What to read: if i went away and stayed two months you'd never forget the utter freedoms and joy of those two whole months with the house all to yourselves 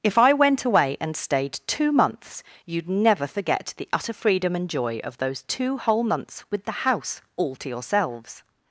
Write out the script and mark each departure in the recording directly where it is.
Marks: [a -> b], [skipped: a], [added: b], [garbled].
if i went away and stayed two months you'd never forget the utter [freedoms -> freedom] and joy of those two whole months with the house all to yourselves